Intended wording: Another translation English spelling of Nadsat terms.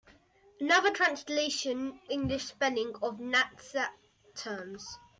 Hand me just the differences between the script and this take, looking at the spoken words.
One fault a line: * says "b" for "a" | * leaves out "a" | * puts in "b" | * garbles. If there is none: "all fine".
all fine